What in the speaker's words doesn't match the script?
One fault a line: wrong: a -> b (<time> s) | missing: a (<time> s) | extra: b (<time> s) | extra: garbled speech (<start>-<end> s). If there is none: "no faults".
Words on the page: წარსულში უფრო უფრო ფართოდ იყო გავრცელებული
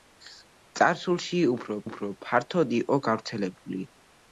no faults